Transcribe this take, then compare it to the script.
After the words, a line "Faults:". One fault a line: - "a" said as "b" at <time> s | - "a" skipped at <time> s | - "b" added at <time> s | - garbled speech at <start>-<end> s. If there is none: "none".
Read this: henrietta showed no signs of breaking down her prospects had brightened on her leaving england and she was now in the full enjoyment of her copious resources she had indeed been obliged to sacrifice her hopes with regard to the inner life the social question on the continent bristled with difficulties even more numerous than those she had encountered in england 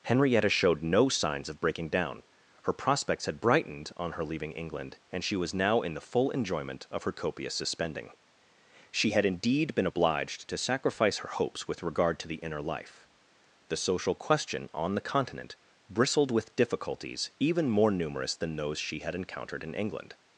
henrietta showed no signs of breaking down her prospects had brightened on her leaving england and she was now in the full enjoyment of her copious suspending she had indeed been obliged to sacrifice her hopes with regard to the inner life the social question on the continent bristled with difficulties even more numerous than those she had encountered in england
Faults:
- "resources" said as "suspending" at 7.5 s